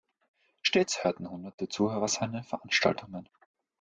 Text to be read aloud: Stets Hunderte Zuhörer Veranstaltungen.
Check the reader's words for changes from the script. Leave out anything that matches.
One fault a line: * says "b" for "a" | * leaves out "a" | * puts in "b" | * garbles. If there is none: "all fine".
* puts in "hörten"
* puts in "seine"